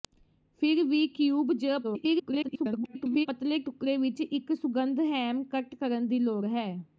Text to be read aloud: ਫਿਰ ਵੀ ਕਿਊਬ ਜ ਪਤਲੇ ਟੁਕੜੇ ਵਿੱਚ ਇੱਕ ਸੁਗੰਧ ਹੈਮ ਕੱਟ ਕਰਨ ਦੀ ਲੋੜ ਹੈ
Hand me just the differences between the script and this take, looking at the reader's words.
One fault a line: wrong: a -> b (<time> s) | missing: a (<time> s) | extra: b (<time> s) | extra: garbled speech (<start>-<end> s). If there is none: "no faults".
extra: garbled speech (1.8-3.3 s)